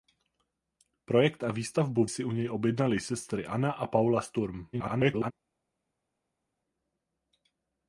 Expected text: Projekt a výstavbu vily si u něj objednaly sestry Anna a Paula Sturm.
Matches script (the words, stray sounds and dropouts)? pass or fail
fail